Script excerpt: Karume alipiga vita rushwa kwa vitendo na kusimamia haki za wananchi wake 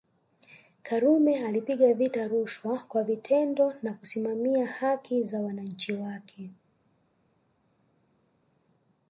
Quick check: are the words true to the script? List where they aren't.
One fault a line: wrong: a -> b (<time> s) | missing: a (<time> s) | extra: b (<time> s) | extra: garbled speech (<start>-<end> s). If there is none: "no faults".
no faults